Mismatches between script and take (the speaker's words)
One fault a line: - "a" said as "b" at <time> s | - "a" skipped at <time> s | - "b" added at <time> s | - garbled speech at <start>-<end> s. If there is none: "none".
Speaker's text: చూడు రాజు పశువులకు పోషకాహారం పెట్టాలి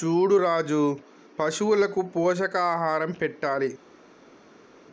none